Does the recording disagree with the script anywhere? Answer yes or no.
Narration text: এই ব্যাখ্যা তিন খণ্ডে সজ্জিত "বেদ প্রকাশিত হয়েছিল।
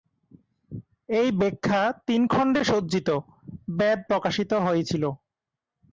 no